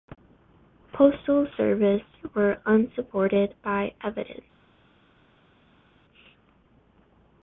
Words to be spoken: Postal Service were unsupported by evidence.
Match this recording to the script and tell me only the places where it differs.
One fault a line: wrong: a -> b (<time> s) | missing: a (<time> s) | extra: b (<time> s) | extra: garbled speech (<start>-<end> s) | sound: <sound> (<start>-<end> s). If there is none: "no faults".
no faults